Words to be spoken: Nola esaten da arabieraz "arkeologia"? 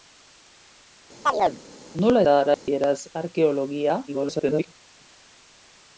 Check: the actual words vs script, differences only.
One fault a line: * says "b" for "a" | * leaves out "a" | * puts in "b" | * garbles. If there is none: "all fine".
* leaves out "esaten"
* garbles